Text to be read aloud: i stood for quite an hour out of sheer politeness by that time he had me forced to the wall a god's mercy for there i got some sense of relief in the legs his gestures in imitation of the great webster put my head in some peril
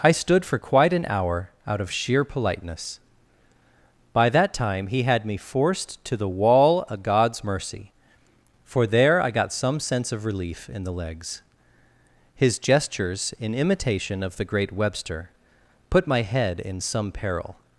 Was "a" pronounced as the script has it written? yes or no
no